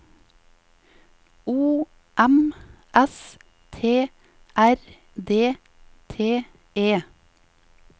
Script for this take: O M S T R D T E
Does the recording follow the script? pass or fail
pass